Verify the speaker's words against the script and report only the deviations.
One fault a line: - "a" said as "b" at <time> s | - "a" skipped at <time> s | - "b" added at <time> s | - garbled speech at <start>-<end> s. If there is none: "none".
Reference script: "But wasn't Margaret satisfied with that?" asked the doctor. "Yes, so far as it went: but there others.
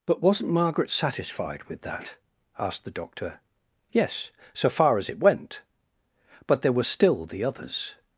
- "were still the" added at 6.7 s